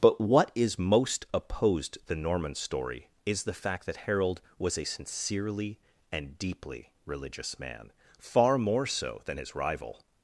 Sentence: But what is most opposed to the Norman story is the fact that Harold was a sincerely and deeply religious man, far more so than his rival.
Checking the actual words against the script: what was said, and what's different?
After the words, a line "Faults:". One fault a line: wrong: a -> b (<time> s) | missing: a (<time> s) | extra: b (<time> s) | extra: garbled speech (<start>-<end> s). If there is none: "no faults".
But what is most opposed the Norman story is the fact that Harold was a sincerely and deeply religious man, far more so than his rival.
Faults:
missing: to (2.0 s)